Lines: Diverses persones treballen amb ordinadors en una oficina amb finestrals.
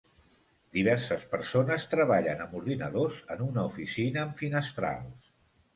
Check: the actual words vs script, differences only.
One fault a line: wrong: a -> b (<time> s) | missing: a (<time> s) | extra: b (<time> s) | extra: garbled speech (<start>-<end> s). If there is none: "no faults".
no faults